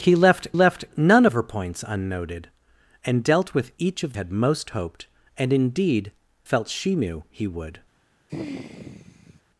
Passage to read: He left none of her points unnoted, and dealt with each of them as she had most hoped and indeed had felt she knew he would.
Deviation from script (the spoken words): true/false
true